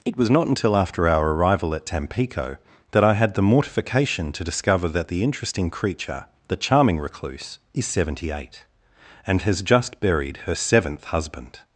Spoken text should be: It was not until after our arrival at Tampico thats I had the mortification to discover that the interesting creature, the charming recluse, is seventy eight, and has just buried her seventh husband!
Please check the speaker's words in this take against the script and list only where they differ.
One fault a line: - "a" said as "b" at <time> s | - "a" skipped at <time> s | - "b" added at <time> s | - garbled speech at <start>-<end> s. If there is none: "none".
- "thats" said as "that" at 2.9 s